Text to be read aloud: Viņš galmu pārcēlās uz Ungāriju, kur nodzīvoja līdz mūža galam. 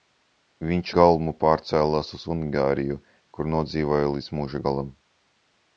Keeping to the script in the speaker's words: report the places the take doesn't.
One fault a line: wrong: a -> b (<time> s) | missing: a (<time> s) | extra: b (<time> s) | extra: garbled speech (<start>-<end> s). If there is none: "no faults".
no faults